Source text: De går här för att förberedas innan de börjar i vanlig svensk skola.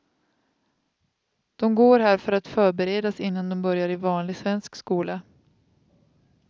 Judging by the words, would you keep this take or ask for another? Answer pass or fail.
pass